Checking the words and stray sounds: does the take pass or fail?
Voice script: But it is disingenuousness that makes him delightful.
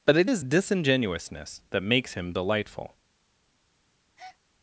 fail